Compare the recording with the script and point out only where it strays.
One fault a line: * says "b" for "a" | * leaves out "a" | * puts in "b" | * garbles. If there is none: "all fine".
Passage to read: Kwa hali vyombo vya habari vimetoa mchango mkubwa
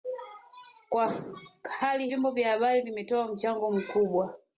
all fine